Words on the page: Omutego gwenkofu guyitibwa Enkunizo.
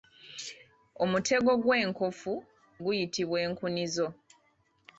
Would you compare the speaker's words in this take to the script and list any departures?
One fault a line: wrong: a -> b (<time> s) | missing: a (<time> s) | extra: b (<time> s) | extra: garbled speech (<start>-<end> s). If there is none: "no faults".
no faults